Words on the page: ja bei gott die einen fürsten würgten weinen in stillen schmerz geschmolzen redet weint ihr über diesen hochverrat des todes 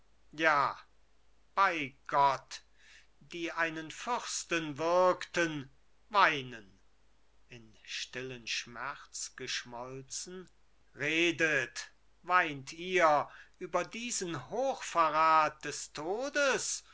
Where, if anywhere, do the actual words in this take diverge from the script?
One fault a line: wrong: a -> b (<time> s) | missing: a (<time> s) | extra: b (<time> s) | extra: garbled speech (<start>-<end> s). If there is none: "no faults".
no faults